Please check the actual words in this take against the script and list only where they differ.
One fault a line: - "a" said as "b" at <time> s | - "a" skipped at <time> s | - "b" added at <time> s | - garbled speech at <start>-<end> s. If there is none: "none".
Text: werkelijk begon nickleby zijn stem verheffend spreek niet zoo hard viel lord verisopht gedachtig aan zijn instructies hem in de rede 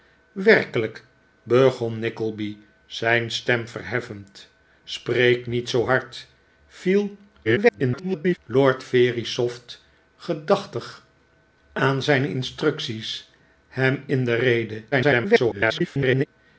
- garbled speech at 7.4-8.4 s
- garbled speech at 14.9-16.3 s